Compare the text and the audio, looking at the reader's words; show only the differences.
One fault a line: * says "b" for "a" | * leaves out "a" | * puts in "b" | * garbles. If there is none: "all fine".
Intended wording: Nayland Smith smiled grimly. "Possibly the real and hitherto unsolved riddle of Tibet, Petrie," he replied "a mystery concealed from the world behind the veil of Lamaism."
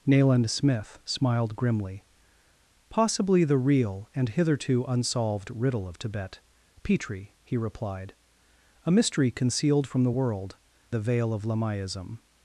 * leaves out "behind"